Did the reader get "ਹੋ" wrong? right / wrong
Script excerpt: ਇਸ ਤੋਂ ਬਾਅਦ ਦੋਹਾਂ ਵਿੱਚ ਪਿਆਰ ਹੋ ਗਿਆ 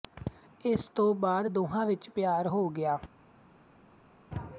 right